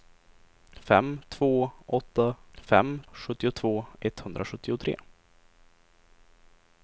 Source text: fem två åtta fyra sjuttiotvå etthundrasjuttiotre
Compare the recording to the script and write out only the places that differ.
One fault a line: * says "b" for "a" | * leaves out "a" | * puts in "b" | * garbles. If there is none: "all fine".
* says "fem" for "fyra"